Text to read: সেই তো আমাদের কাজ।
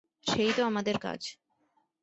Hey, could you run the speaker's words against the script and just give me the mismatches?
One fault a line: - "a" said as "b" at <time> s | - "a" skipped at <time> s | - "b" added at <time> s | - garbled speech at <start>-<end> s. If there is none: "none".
none